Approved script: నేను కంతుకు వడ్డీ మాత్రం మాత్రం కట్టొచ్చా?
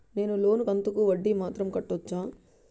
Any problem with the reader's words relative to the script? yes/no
yes